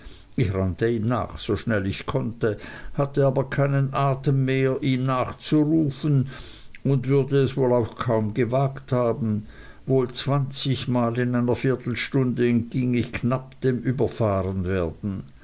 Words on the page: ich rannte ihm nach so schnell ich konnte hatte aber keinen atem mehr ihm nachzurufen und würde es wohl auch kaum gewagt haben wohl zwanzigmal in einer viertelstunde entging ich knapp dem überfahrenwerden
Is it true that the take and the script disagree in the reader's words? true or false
false